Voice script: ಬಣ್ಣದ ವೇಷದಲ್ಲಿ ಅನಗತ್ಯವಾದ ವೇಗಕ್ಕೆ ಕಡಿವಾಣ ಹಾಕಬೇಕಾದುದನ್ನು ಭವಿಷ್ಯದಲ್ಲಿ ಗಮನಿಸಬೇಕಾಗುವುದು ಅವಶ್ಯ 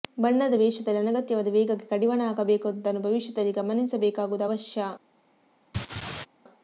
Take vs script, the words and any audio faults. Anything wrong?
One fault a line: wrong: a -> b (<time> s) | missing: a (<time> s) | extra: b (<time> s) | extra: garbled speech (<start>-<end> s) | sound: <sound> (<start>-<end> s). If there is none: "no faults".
sound: laugh (5.7-6.3 s)